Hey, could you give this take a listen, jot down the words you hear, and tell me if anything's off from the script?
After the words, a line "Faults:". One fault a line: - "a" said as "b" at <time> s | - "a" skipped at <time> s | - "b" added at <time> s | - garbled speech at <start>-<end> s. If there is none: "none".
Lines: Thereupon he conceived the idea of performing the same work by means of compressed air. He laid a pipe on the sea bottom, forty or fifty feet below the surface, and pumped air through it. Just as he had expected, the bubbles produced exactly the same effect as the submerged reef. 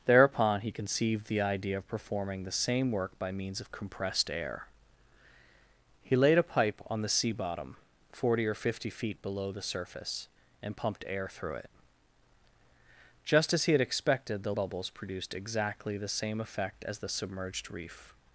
Thereupon he conceived the idea of performing the same work by means of compressed air. He laid a pipe on the sea bottom, forty or fifty feet below the surface, and pumped air through it. Just as he had expected, the bubbles produced exactly the same effect as the submerged reef.
Faults:
none